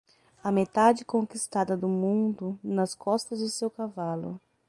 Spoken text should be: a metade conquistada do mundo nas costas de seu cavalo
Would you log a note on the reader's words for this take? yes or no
no